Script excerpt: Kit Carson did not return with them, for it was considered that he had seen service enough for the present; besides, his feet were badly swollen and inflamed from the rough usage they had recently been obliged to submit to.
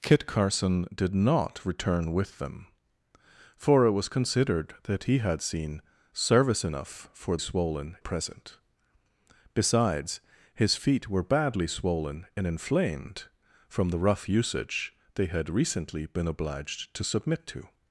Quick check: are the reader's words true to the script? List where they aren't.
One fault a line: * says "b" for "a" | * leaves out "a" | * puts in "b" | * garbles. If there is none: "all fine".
* says "swollen" for "the"